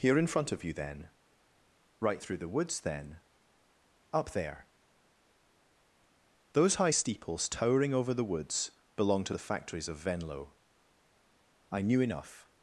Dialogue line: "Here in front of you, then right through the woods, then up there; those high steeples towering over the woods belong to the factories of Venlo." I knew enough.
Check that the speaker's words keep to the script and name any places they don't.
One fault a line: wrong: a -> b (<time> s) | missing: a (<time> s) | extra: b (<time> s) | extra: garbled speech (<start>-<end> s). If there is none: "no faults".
no faults